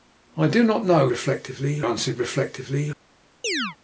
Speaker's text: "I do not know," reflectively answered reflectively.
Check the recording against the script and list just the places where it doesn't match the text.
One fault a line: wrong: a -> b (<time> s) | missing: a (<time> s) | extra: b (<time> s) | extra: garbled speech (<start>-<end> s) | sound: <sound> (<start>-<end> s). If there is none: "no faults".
sound: chirp (3.4-3.8 s)